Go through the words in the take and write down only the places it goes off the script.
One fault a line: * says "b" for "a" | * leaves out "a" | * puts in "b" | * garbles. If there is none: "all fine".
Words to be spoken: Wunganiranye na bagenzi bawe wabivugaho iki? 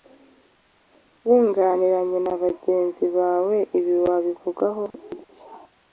* puts in "ibi"